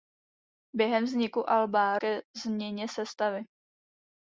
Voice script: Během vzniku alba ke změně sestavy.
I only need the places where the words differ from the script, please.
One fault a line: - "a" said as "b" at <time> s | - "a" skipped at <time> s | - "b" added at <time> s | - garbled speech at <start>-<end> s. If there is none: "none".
none